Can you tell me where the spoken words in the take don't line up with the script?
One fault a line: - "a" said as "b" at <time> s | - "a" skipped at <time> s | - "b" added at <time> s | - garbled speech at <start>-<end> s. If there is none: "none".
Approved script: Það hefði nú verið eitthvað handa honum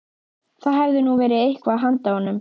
none